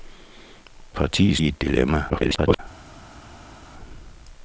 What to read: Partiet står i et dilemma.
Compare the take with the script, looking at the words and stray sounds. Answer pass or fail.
fail